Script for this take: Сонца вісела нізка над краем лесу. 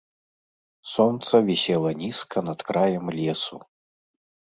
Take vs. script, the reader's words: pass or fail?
pass